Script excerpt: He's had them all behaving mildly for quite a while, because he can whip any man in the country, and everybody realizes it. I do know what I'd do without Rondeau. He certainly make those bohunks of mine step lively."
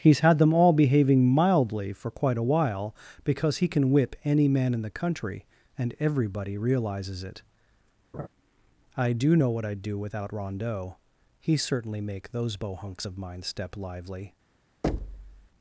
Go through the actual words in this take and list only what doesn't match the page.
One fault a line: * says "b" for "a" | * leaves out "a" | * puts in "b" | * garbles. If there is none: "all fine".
all fine